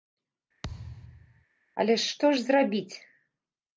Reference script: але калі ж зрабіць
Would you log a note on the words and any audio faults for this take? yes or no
yes